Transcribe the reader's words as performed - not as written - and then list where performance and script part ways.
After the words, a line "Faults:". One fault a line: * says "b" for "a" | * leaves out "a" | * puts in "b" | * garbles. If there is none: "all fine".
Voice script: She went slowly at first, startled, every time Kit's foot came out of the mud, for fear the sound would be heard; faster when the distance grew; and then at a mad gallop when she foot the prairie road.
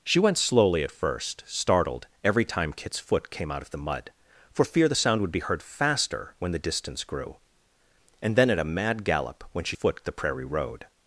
She went slowly at first, startled, every time Kit's foot came out of the mud, for fear the sound would be heard; faster when the distance grew; and then at a mad gallop when she foot the prairie road.
Faults:
all fine